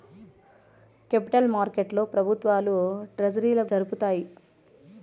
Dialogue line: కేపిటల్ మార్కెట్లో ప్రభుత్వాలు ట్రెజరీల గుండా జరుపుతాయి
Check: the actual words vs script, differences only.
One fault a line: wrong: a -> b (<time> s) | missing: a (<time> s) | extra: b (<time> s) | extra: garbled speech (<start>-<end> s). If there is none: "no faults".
missing: గుండా (3.6 s)